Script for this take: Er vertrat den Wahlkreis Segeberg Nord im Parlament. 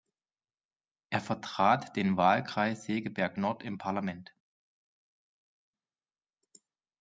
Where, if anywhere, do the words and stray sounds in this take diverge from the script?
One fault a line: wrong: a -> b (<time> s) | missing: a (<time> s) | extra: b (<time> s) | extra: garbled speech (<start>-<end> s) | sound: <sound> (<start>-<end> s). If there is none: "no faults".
no faults